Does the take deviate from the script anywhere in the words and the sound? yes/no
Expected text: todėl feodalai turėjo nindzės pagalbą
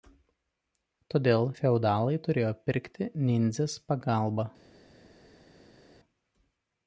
yes